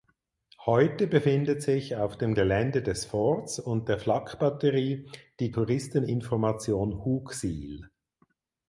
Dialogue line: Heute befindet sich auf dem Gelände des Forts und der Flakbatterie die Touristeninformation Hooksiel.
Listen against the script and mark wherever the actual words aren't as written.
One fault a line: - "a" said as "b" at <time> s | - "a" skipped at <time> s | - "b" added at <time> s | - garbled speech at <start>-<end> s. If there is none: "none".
none